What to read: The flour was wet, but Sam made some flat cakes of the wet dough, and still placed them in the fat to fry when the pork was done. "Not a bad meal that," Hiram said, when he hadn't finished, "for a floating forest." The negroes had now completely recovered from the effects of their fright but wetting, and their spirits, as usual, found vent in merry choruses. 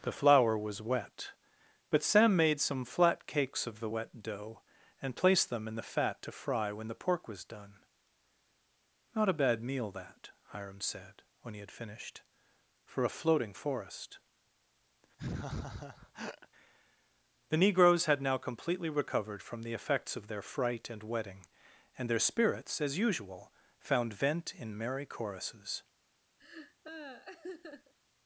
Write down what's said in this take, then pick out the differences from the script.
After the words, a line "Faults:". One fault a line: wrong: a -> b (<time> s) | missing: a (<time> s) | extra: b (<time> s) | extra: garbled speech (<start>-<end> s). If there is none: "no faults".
The flour was wet, but Sam made some flat cakes of the wet dough, and placed them in the fat to fry when the pork was done. "Not a bad meal that," Hiram said, when he had finished, "for a floating forest." The negroes had now completely recovered from the effects of their fright and wetting, and their spirits, as usual, found vent in merry choruses.
Faults:
missing: still (5.1 s)
wrong: hadn't -> had (11.6 s)
wrong: but -> and (20.9 s)